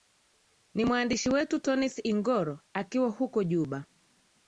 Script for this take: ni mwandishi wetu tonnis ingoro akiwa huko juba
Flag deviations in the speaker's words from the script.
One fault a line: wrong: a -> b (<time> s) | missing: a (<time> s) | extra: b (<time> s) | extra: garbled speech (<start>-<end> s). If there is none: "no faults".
no faults